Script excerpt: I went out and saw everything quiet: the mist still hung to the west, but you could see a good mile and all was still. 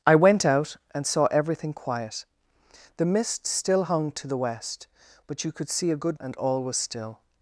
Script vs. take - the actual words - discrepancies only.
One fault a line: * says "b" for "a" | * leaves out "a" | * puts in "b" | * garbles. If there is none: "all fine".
* leaves out "mile"